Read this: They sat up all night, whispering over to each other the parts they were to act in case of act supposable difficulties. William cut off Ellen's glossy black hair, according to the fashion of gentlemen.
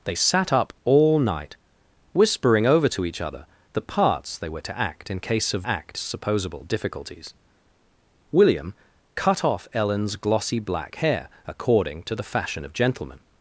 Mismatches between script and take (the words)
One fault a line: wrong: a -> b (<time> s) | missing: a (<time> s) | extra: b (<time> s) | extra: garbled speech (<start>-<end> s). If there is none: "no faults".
no faults